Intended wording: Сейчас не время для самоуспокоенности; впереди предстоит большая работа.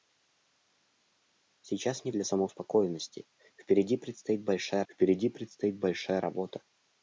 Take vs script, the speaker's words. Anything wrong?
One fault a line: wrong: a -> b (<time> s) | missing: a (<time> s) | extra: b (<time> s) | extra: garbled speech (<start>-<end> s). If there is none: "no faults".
missing: время (2.1 s)
extra: впереди предстоит большая (4.9 s)